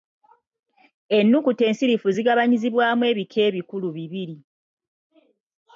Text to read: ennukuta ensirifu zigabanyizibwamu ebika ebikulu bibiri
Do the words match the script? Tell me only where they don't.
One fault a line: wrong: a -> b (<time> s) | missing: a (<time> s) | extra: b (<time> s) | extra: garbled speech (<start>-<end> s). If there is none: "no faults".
no faults